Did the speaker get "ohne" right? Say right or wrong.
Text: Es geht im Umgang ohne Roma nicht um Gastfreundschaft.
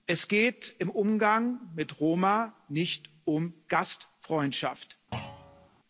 wrong